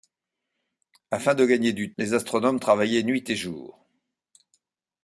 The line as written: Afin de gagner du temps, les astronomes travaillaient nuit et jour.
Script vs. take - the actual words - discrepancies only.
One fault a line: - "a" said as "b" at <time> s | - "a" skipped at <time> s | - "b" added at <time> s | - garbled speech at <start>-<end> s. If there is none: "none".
- "temps" skipped at 1.9 s